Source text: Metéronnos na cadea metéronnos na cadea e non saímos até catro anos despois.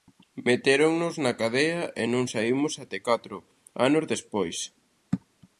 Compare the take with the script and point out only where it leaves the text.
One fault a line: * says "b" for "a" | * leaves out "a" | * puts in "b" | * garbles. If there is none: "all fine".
* leaves out "metéronnos na cadea"